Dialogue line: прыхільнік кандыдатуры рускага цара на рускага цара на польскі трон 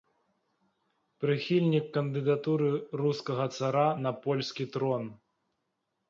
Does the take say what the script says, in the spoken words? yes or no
no